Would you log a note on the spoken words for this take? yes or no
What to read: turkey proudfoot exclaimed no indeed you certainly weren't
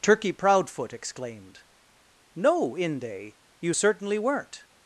yes